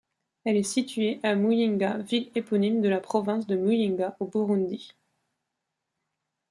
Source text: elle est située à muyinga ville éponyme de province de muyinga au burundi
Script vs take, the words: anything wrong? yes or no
yes